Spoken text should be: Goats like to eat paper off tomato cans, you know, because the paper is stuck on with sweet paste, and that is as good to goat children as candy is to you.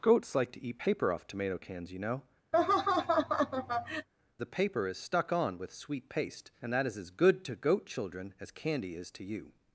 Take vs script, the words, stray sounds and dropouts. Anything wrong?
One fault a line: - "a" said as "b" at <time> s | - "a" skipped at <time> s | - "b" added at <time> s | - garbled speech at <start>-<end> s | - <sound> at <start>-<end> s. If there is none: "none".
- "because" skipped at 2.2 s
- laugh at 2.5-4.1 s